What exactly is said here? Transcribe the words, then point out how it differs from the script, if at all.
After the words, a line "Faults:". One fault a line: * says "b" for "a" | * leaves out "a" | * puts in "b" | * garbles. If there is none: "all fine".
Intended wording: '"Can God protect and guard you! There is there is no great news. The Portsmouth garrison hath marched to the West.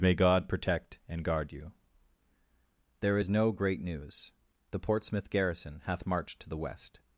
'"May God protect and guard you! There is no great news. The Portsmouth garrison hath marched to the West.
Faults:
* says "May" for "Can"
* leaves out "there is"